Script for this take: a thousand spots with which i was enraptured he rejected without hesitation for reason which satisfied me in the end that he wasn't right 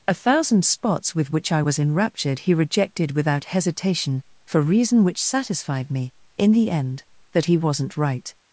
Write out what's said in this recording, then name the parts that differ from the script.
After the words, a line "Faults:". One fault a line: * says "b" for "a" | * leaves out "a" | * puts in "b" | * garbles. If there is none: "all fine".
a thousand spots with which i was enraptured he rejected without hesitation for reason which satisfied me in the end that he wasn't right
Faults:
all fine